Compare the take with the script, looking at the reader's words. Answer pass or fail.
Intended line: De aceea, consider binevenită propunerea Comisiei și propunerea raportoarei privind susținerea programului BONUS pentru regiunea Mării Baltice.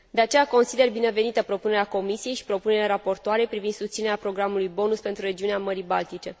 pass